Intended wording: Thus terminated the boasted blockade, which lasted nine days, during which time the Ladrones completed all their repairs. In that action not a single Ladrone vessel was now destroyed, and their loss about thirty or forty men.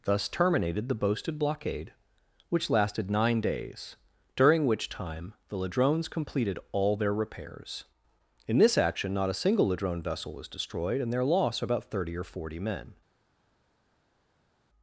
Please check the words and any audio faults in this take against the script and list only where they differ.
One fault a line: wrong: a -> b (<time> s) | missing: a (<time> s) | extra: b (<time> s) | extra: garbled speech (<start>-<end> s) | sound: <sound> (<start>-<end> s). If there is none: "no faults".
wrong: that -> this (8.6 s)
missing: now (10.5 s)